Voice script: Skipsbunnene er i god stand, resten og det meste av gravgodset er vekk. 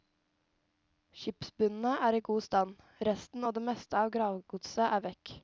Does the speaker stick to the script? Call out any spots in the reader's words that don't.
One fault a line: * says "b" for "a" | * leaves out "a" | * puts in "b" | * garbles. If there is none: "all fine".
all fine